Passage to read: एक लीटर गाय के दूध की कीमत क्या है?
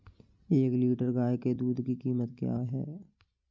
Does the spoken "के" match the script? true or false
true